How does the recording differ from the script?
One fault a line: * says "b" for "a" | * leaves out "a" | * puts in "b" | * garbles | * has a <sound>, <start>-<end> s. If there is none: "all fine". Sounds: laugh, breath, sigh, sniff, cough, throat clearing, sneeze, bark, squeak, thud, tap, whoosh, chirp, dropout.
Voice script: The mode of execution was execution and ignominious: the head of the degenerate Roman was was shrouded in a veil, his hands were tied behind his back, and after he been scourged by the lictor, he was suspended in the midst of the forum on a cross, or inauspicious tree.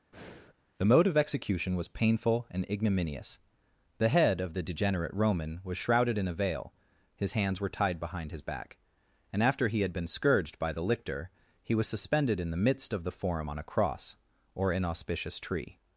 * has a breath, 0.1-0.5 s
* says "painful" for "execution"
* leaves out "was"
* puts in "had"